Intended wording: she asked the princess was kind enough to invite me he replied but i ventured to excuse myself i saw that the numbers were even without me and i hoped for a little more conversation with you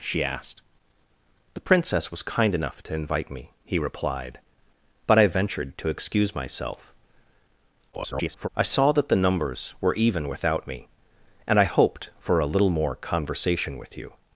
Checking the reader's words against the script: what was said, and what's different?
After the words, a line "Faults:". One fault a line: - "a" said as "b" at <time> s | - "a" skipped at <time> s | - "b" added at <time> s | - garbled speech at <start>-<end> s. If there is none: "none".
she asked the princess was kind enough to invite me he replied but i ventured to excuse myself [garbled] i saw that the numbers were even without me and i hoped for a little more conversation with you
Faults:
- garbled speech at 7.9-8.5 s